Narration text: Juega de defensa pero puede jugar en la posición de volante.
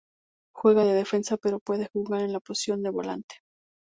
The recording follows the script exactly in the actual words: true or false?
true